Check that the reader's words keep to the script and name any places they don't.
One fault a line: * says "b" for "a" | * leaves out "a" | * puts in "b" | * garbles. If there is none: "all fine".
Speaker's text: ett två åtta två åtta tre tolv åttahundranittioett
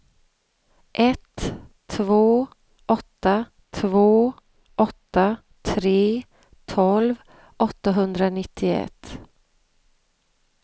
all fine